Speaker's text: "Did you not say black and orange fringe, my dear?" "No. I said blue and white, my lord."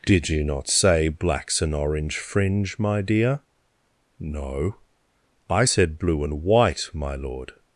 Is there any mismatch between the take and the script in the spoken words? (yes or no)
yes